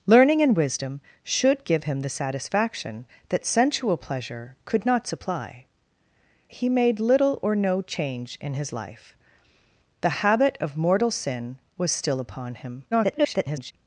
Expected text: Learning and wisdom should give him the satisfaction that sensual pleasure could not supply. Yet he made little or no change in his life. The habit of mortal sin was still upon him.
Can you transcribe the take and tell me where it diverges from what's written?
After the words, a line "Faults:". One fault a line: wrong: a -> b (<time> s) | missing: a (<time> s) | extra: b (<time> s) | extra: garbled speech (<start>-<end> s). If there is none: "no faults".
Learning and wisdom should give him the satisfaction that sensual pleasure could not supply. He made little or no change in his life. The habit of mortal sin was still upon him. [garbled]
Faults:
missing: Yet (5.7 s)
extra: garbled speech (12.9-13.7 s)